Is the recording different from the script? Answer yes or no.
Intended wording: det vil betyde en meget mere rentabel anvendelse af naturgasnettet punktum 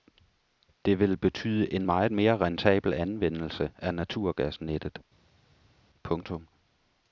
no